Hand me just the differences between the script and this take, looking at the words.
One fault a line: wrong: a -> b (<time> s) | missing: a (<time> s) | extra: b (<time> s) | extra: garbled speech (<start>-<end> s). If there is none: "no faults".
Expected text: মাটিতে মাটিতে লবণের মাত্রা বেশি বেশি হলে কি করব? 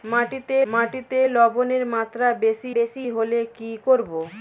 no faults